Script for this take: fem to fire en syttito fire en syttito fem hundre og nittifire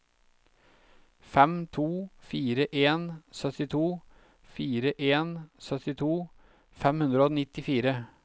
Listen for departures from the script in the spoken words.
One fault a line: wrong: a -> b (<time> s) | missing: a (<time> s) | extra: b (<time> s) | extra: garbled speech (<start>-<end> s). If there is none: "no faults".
no faults